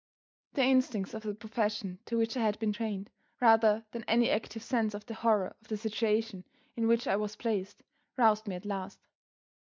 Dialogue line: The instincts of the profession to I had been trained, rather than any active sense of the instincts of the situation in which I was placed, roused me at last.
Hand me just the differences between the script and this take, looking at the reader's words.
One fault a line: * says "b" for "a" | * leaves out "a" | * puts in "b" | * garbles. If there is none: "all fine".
* puts in "which"
* says "horror" for "instincts"